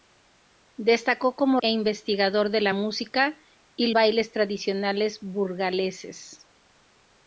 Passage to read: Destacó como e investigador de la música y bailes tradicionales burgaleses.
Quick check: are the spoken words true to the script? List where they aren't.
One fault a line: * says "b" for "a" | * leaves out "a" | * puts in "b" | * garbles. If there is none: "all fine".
all fine